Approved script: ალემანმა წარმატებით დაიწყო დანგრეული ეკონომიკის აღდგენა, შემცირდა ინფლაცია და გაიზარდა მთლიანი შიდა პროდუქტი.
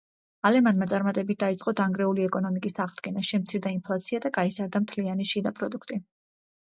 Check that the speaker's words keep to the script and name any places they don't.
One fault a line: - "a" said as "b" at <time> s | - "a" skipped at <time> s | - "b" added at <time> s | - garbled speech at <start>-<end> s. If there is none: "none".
none